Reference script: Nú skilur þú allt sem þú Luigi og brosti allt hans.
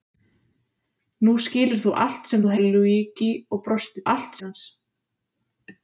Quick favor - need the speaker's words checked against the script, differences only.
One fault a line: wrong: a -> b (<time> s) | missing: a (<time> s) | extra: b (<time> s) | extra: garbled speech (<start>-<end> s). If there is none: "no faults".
no faults